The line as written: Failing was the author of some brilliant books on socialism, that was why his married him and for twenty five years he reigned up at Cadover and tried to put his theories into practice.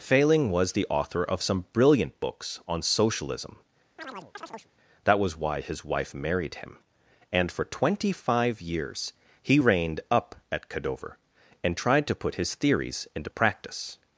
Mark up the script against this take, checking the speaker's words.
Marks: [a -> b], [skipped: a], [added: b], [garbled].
Failing was the author of some brilliant books on socialism, that was why his [added: wife] married him and for twenty five years he reigned up at Cadover and tried to put his theories into practice.